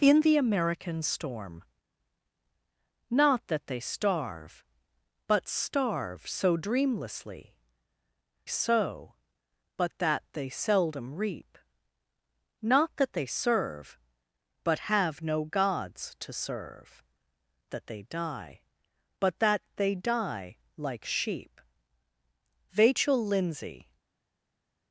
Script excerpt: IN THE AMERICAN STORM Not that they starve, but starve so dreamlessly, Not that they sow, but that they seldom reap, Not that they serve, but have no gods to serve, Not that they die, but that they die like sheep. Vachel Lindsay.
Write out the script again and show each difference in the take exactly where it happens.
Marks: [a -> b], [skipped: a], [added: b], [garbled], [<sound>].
IN THE AMERICAN STORM Not that they starve, but starve so dreamlessly, [skipped: Not that they] sow, but that they seldom reap, Not that they serve, but have no gods to serve, [skipped: Not] that they die, but that they die like sheep. Vachel Lindsay.